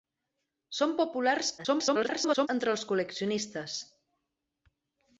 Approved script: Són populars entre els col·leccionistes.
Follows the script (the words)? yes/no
no